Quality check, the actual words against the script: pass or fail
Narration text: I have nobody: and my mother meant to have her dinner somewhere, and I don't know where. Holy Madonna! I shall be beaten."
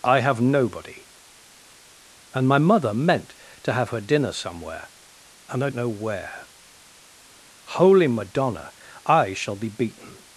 fail